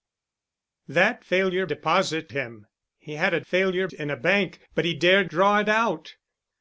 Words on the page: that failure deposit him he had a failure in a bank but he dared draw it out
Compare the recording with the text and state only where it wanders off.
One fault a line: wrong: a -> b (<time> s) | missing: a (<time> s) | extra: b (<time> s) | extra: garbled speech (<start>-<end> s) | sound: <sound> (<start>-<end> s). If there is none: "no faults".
no faults